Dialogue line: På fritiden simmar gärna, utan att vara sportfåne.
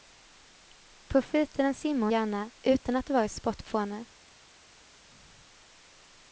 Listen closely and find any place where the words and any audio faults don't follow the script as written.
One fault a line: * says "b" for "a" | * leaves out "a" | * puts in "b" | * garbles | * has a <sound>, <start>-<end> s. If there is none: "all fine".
all fine